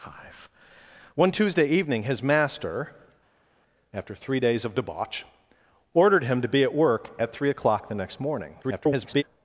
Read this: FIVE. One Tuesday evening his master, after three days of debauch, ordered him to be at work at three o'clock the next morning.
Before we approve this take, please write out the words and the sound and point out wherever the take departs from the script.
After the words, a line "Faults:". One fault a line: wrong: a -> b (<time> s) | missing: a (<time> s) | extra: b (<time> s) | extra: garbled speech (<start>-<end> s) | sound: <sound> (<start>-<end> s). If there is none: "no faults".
FIVE. One Tuesday evening his master, after three days of debauch, ordered him to be at work at three o'clock the next morning. [garbled]
Faults:
extra: garbled speech (8.6-9.2 s)